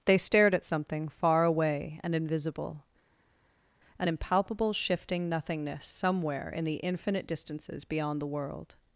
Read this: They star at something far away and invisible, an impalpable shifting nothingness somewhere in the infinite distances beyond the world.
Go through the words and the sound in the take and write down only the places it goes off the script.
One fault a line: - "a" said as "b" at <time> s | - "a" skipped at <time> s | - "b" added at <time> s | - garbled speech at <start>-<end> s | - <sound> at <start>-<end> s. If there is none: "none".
- "star" said as "stared" at 0.1 s